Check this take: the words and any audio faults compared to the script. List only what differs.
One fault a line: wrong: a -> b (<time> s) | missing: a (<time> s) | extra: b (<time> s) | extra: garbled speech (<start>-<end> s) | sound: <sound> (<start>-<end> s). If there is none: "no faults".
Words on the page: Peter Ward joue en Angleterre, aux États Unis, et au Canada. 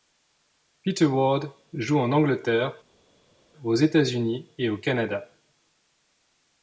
no faults